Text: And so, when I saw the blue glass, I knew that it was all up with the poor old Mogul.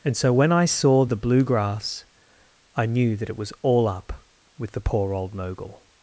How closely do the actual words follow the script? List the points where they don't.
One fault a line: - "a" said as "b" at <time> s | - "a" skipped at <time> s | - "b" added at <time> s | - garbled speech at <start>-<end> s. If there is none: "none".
- "glass" said as "grass" at 1.4 s